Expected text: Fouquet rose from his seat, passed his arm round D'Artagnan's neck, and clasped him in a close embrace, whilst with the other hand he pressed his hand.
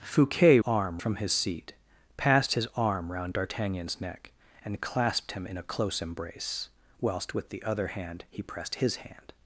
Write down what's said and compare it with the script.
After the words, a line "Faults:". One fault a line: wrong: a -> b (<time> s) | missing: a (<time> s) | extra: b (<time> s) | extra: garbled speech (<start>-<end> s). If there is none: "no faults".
Fouquet arm from his seat, passed his arm round D'Artagnan's neck, and clasped him in a close embrace, whilst with the other hand he pressed his hand.
Faults:
wrong: rose -> arm (0.7 s)